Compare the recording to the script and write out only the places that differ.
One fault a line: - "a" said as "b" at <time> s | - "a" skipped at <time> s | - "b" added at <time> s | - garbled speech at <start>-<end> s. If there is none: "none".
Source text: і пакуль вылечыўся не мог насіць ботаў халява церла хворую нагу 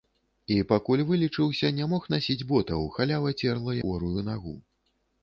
none